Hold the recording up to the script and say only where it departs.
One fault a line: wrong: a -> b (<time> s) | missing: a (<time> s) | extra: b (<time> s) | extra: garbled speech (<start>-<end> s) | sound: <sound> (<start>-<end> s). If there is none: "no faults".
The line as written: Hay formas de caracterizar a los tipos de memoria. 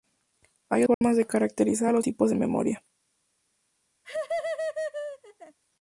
sound: dropout (0.9-1.0 s)
sound: laugh (4.0-5.6 s)